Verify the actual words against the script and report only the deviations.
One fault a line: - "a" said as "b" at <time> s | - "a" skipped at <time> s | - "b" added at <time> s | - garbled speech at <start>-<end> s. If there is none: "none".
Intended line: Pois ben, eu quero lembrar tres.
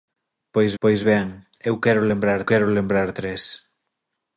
- "pois" added at 0.8 s
- "quero lembrar" added at 2.5 s